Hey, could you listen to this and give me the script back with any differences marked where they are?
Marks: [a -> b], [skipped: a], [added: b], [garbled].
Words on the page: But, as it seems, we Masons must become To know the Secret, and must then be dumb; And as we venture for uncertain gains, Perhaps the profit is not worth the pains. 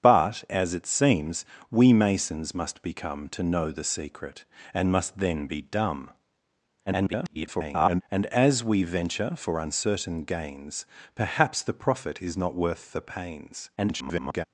But, as it seems, we Masons must become To know the Secret, and must then be dumb; [garbled] And as we venture for uncertain gains, Perhaps the profit is not worth the pains. [garbled]